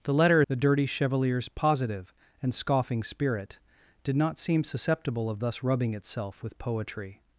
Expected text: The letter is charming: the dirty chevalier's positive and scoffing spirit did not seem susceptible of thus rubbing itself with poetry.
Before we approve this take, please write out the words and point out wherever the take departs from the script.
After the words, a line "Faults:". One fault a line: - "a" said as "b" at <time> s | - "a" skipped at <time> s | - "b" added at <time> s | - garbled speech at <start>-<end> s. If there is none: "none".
The letter: the dirty chevalier's positive and scoffing spirit did not seem susceptible of thus rubbing itself with poetry.
Faults:
- "is charming" skipped at 0.4 s